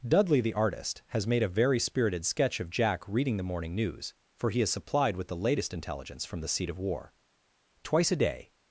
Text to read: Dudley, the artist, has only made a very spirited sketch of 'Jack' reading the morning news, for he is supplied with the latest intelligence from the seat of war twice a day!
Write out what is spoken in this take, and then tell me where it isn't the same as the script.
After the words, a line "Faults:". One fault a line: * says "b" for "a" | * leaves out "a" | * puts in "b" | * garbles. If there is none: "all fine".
Dudley, the artist, has made a very spirited sketch of 'Jack' reading the morning news, for he is supplied with the latest intelligence from the seat of war twice a day!
Faults:
* leaves out "only"